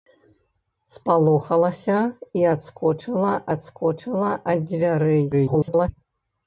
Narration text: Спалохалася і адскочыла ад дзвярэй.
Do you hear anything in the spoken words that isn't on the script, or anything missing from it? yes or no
yes